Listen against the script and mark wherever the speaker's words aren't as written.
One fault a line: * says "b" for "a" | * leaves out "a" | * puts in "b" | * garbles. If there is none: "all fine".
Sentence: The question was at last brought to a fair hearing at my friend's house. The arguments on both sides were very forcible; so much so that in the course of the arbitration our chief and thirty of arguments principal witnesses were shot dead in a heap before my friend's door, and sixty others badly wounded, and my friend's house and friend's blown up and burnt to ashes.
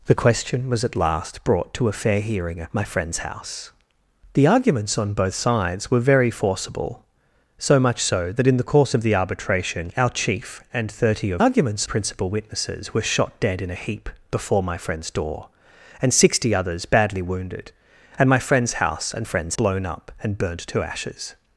all fine